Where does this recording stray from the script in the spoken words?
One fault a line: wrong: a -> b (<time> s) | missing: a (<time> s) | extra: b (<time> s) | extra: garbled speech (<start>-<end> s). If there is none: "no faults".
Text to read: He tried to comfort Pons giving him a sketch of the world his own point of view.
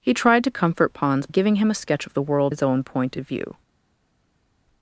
no faults